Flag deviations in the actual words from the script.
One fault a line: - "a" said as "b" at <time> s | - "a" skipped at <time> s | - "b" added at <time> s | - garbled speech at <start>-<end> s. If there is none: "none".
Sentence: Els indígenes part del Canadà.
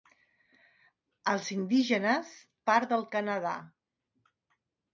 none